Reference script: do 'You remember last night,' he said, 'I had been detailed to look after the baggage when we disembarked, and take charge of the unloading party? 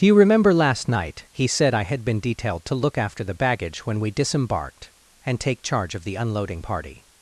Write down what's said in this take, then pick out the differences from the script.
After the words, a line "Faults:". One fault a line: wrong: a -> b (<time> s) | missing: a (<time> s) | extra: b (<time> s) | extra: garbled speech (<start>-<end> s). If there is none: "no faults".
do 'You remember last night,' he said, 'I had been detailed to look after the baggage when we disembarked, and take charge of the unloading party?
Faults:
no faults